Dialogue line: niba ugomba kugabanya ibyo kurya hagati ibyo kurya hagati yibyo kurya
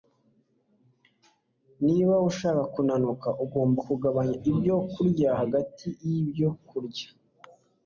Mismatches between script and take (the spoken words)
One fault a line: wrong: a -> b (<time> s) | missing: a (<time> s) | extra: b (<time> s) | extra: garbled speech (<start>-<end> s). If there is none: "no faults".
extra: ushaka kunanuka (2.3 s)
missing: ibyo kurya hagati (5.9 s)